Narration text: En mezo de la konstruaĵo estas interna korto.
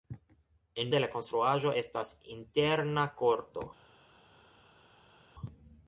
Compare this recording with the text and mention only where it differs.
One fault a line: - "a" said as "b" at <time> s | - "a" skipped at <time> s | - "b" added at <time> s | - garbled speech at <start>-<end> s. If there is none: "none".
- "mezo" skipped at 0.9 s